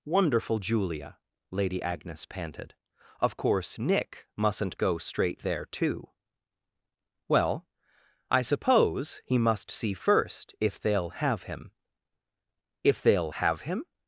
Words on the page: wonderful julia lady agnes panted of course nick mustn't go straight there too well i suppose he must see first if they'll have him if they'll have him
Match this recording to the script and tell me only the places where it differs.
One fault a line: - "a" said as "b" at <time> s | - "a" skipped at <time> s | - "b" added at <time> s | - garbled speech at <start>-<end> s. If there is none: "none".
none